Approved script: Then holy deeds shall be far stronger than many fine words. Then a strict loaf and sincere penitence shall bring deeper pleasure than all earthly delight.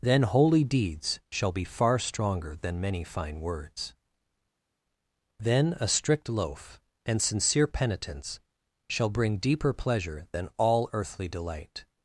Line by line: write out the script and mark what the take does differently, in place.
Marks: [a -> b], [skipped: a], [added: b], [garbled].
Then holy deeds shall be far stronger than many fine words. Then a strict loaf and sincere penitence shall bring deeper pleasure than all earthly delight.